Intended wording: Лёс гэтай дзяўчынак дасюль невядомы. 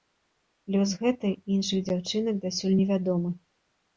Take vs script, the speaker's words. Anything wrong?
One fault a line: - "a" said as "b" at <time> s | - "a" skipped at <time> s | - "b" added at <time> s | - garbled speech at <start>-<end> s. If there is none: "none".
- "і іншых" added at 1.4 s